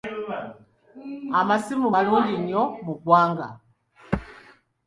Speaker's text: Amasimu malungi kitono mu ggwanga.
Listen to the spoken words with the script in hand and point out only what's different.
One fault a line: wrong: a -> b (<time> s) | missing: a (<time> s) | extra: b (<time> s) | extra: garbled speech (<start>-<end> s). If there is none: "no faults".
wrong: kitono -> nnyo (2.4 s)